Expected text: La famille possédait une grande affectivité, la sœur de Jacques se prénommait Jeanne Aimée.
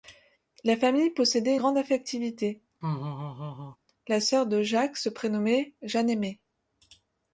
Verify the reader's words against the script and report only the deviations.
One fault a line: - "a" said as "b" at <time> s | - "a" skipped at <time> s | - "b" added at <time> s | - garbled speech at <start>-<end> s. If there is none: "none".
- "une" skipped at 1.6 s